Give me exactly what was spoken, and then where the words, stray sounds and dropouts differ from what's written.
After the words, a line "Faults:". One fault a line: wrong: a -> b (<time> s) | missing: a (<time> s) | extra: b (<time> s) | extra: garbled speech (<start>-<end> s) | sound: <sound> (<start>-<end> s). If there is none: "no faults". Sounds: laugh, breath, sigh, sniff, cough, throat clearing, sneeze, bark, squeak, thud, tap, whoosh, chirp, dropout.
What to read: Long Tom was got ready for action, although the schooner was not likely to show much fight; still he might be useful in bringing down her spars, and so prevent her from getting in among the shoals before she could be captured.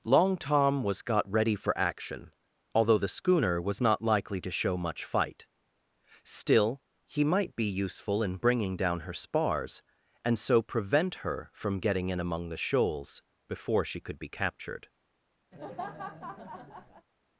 Long Tom was got ready for action, although the schooner was not likely to show much fight; still he might be useful in bringing down her spars, and so prevent her from getting in among the shoals before she could be captured.
Faults:
sound: laugh (15.5-17.1 s)